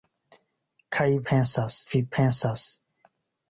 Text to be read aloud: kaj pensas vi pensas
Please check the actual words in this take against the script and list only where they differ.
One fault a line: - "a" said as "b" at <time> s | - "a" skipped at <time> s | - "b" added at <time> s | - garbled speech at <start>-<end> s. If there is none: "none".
none